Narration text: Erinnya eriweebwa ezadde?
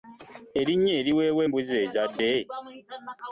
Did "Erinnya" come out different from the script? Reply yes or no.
no